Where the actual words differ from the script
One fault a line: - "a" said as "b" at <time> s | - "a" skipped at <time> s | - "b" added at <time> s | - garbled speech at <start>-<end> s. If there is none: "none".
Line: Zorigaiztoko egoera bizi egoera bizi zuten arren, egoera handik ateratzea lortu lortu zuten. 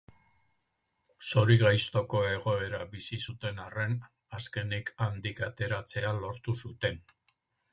- "egoera bizi" skipped at 3.2 s
- "egoera" said as "azkenik" at 4.4 s
- "lortu" skipped at 6.6 s